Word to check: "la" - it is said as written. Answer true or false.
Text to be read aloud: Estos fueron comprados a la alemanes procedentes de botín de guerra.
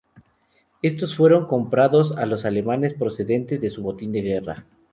false